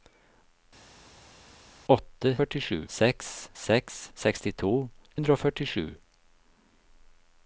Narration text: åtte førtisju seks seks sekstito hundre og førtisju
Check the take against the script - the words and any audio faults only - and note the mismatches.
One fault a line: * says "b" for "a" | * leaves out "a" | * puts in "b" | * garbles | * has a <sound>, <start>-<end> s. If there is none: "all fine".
all fine